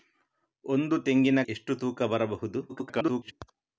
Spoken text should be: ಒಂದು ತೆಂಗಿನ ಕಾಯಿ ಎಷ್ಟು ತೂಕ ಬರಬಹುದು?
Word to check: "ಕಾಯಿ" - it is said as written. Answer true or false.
false